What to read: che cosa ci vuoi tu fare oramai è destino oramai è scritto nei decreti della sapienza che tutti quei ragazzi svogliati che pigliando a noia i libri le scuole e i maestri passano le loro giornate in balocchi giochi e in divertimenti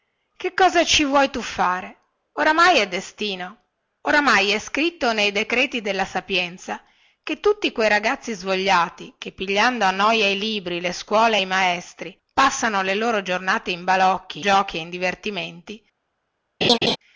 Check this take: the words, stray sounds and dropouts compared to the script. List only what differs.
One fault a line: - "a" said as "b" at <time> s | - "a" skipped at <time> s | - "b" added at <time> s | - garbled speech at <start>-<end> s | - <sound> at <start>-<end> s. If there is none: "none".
- laugh at 16.6-17.0 s